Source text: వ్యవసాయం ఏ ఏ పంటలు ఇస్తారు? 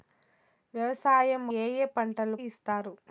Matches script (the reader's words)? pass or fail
pass